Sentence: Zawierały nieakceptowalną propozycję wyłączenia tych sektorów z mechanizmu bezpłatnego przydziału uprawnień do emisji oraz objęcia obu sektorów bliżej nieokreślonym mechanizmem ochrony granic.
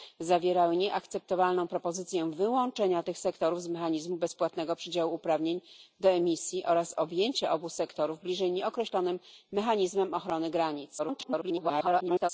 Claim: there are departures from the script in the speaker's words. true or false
true